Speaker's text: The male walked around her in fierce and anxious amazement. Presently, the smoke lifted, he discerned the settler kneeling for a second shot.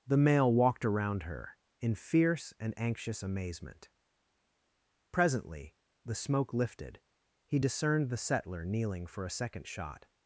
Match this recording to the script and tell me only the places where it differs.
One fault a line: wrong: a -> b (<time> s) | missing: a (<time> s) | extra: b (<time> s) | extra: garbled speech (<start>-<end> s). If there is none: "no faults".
no faults